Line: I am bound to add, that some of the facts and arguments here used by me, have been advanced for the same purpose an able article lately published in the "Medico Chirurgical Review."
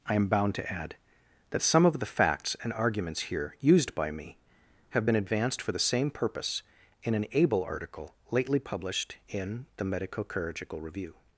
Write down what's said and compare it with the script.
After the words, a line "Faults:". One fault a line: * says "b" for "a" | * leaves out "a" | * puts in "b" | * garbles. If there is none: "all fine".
I am bound to add, that some of the facts and arguments here used by me, have been advanced for the same purpose in an able article lately published in the "Medico Chirurgical Review."
Faults:
* puts in "in"